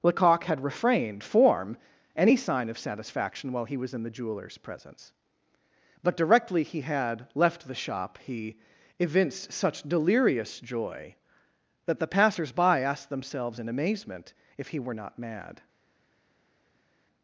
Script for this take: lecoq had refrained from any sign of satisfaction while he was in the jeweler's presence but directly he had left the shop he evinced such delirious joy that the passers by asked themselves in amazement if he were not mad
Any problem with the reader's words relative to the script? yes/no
yes